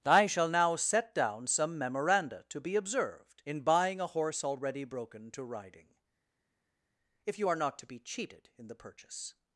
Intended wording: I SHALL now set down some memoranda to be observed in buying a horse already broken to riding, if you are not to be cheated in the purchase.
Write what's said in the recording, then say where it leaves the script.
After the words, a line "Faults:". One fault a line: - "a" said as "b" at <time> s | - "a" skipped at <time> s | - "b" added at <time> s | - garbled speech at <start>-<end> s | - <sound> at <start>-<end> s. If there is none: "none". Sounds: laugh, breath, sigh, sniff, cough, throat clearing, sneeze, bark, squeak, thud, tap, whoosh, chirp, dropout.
I SHALL now set down some memoranda to be observed in buying a horse already broken to riding, if you are not to be cheated in the purchase.
Faults:
none